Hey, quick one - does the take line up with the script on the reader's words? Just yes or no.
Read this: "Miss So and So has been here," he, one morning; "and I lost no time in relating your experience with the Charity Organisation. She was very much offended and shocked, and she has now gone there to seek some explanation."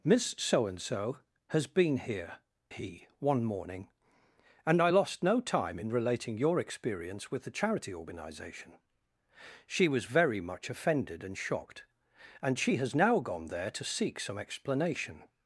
yes